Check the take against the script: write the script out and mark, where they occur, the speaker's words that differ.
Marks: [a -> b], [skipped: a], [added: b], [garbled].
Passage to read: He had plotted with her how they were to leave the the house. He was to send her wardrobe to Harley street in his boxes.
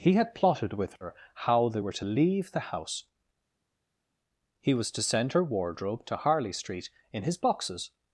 He had plotted with her how they were to leave the [skipped: the] house. He was to send her wardrobe to Harley street in his boxes.